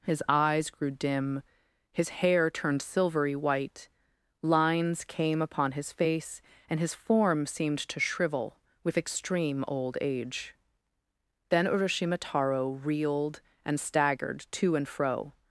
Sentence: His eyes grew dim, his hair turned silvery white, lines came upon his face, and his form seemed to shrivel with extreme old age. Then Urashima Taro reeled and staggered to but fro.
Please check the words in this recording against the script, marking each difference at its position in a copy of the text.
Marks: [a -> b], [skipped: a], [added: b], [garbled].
His eyes grew dim, his hair turned silvery white, lines came upon his face, and his form seemed to shrivel with extreme old age. Then Urashima Taro reeled and staggered to [but -> and] fro.